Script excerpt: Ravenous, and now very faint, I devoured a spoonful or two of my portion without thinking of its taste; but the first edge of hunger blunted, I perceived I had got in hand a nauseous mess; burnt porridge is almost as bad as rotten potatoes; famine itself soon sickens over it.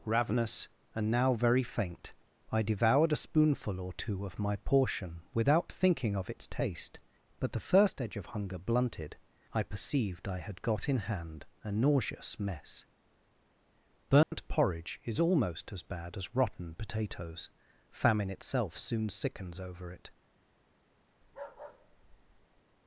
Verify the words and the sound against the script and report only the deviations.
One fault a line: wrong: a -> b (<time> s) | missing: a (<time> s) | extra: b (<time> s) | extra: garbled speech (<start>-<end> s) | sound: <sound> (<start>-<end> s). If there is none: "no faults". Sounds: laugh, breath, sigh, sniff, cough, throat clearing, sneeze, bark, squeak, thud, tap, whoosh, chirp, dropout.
sound: dropout (14.2-14.3 s)
sound: bark (21.2-22.6 s)